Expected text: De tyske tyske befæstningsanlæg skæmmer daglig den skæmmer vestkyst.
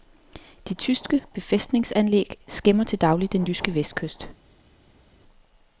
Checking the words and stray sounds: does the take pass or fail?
fail